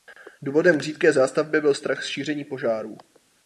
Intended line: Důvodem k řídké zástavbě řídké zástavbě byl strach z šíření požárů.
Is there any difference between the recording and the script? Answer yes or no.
yes